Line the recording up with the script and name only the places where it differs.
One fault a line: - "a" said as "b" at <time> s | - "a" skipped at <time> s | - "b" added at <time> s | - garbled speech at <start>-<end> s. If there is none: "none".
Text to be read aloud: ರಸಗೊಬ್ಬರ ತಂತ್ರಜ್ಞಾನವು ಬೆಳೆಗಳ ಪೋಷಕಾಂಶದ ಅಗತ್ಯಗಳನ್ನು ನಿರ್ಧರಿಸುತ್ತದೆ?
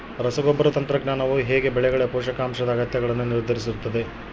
- "ಹೇಗೆ" added at 1.4 s